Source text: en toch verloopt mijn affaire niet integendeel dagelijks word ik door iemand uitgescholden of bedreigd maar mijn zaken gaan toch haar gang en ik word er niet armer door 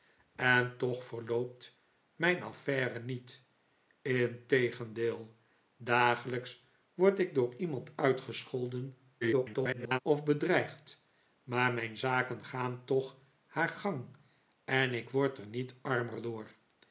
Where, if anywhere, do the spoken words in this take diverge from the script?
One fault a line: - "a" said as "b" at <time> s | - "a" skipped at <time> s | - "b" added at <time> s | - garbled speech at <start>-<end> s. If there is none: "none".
- garbled speech at 9.2-10.0 s